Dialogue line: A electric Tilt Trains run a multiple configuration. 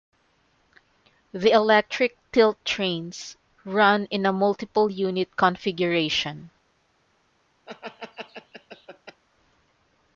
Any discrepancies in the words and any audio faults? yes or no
yes